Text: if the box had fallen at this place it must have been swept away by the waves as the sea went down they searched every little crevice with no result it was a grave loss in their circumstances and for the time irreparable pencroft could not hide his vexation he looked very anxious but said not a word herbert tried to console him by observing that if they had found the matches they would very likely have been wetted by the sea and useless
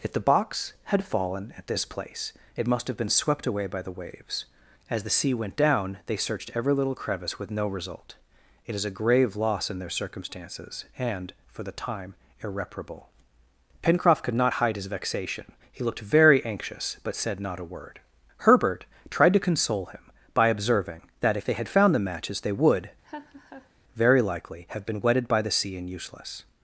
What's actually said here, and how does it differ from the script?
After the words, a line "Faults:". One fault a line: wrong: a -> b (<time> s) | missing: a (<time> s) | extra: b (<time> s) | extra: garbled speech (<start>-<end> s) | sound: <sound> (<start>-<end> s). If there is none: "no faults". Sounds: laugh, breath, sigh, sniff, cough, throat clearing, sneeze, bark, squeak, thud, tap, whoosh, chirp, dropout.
if the box had fallen at this place it must have been swept away by the waves as the sea went down they searched every little crevice with no result it is a grave loss in their circumstances and for the time irreparable pencroft could not hide his vexation he looked very anxious but said not a word herbert tried to console him by observing that if they had found the matches they would very likely have been wetted by the sea and useless
Faults:
wrong: was -> is (8.7 s)
sound: laugh (23.0-23.7 s)